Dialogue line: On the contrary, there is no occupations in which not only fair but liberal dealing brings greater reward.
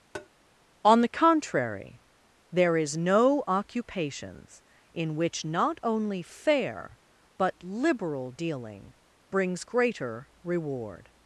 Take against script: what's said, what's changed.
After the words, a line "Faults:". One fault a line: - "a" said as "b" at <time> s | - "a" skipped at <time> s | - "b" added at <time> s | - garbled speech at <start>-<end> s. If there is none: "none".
On the contrary, there is no occupations in which not only fair but liberal dealing brings greater reward.
Faults:
none